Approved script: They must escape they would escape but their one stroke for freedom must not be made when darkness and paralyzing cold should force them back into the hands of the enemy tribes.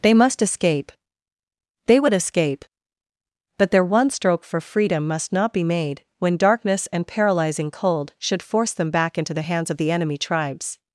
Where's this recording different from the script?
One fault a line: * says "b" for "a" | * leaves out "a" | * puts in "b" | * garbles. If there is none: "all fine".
all fine